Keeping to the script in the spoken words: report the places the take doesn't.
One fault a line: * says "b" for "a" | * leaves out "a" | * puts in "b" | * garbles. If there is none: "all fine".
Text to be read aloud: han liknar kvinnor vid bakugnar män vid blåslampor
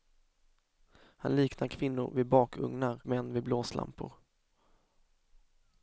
all fine